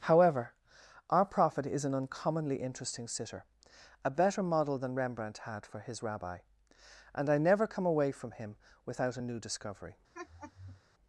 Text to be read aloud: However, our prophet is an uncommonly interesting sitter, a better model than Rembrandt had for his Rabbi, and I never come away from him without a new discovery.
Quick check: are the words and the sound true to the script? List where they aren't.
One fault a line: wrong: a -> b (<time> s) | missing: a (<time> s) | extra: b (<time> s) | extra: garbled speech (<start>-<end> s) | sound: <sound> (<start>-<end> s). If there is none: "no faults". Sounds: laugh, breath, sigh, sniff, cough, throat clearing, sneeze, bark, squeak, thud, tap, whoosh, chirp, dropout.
sound: laugh (10.1-10.8 s)